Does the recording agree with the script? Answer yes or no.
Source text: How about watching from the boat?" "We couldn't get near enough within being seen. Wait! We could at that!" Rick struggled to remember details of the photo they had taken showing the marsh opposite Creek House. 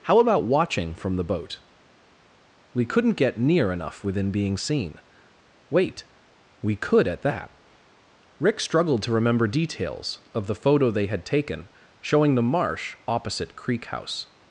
yes